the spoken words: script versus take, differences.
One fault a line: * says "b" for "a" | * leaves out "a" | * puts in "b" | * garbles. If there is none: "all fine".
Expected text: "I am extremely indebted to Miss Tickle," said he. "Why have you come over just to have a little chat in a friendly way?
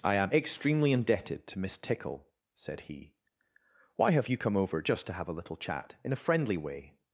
all fine